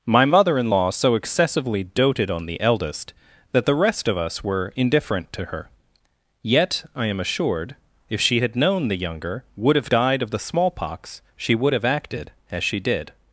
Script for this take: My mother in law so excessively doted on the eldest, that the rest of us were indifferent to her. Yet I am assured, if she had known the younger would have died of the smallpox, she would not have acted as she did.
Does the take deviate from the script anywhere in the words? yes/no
yes